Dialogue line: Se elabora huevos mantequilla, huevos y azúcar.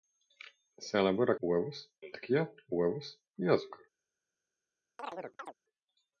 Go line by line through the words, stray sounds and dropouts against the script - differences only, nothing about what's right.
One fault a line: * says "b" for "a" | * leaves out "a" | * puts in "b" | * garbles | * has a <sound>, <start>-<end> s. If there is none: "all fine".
* has a chirp, 5.0-5.5 s